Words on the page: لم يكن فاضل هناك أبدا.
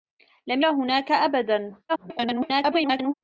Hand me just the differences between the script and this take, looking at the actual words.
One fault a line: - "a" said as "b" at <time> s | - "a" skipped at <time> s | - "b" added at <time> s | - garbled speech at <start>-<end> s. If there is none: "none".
- "يكن فاضل" skipped at 0.6 s
- garbled speech at 1.9-3.1 s